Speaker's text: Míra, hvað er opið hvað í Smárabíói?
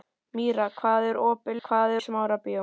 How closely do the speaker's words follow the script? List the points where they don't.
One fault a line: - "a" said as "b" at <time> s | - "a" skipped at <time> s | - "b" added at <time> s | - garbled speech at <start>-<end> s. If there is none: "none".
none